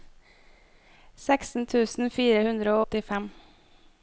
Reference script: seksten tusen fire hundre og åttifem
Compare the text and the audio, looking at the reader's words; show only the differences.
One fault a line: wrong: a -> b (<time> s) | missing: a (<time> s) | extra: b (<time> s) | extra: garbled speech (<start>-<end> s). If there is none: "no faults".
missing: og (2.8 s)